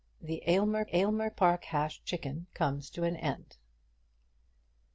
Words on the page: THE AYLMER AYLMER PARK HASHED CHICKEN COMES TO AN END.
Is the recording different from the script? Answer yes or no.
no